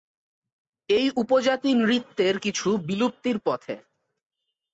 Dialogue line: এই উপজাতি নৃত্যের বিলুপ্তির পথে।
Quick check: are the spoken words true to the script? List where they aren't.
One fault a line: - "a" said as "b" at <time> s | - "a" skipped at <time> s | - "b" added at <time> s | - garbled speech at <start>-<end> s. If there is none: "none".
- "কিছু" added at 2.4 s